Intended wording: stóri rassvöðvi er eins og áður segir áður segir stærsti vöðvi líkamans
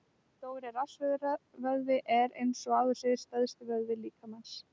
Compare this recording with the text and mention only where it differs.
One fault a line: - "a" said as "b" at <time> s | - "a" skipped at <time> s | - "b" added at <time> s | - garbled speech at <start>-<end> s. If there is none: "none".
- "áður segir" skipped at 3.2 s